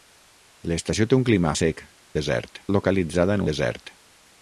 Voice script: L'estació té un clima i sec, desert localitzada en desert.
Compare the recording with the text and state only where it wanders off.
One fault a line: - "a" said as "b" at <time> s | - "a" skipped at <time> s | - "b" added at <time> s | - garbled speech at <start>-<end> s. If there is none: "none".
none